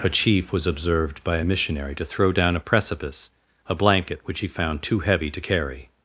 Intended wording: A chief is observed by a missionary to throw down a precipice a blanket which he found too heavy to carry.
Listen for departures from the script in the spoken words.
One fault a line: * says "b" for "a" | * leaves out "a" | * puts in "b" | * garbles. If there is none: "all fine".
* says "was" for "is"